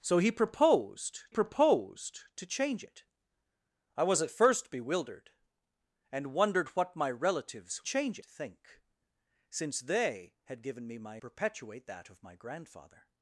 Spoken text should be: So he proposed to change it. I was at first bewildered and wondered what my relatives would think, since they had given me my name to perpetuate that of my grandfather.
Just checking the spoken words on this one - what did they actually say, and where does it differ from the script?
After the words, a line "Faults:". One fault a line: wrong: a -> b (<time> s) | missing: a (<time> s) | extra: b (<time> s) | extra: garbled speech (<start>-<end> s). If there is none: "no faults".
So he proposed proposed to change it. I was at first bewildered and wondered what my relatives change think, since they had given me my perpetuate that of my grandfather.
Faults:
extra: proposed (1.3 s)
wrong: would -> change (7.8 s)
missing: name to (11.2 s)